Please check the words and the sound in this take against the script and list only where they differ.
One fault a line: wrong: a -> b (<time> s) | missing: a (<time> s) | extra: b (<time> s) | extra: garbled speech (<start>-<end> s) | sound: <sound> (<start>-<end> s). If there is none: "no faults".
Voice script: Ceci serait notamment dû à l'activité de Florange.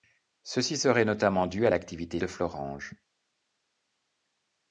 no faults